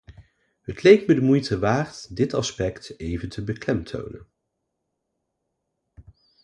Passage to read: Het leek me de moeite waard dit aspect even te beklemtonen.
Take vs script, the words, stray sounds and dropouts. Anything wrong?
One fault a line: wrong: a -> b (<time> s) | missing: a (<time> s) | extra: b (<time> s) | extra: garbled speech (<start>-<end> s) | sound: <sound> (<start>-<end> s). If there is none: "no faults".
no faults